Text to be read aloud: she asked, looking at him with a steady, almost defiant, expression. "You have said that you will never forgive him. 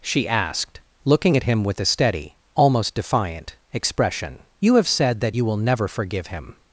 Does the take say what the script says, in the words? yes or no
yes